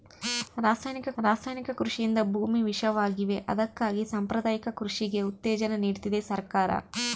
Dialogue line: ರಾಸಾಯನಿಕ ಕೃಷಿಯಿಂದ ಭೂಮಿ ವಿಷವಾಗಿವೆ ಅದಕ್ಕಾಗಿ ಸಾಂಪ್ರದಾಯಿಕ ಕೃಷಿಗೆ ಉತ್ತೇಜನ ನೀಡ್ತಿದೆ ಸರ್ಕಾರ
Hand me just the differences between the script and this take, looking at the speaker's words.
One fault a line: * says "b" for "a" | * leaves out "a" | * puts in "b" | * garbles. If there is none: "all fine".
* puts in "ರಾಸಾಯನಿಕ"